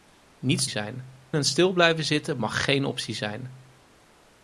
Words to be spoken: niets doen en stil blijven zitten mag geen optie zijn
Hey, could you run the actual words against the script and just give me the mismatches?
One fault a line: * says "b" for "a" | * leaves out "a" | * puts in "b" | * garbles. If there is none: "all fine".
* says "zijn" for "doen"